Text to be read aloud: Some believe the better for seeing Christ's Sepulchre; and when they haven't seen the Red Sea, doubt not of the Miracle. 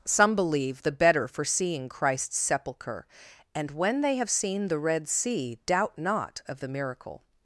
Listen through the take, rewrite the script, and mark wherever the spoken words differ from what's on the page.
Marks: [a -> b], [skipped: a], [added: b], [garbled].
Some believe the better for seeing Christ's Sepulchre; and when they [haven't -> have] seen the Red Sea, doubt not of the Miracle.